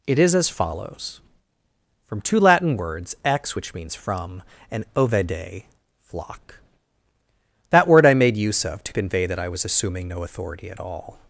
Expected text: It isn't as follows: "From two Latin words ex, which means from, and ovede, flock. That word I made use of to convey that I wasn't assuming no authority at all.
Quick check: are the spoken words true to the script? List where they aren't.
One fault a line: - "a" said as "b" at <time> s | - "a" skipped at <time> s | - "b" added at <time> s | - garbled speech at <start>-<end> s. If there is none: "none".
- "isn't" said as "is" at 0.2 s
- "wasn't" said as "was" at 9.5 s